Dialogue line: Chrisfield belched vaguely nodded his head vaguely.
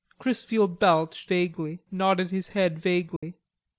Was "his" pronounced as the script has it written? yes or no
yes